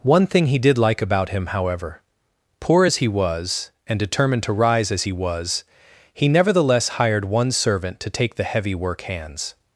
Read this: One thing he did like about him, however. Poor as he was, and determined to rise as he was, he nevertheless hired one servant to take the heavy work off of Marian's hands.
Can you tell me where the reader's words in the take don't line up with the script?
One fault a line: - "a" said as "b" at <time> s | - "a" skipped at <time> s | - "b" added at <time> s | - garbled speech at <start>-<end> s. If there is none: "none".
- "off of Marian's" skipped at 9.0 s